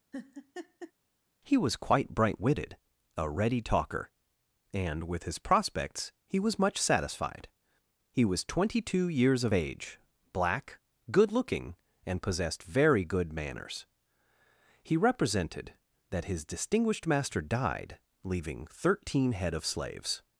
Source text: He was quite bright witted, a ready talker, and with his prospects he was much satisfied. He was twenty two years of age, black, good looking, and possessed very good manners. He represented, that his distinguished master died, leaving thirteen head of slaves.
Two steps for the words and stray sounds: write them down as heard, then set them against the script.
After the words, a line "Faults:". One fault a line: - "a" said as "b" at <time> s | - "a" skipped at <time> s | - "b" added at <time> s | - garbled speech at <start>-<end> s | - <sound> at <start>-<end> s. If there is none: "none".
He was quite bright witted, a ready talker, and with his prospects he was much satisfied. He was twenty two years of age, black, good looking, and possessed very good manners. He represented, that his distinguished master died, leaving thirteen head of slaves.
Faults:
- laugh at 0.1-0.9 s